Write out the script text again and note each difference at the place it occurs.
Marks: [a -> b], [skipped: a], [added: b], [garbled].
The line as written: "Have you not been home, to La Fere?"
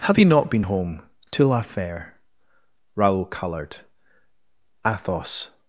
"Have you not been home, to La Fere?" [added: Raoul colored Athos]